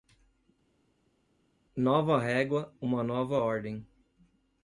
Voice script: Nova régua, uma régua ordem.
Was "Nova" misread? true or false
false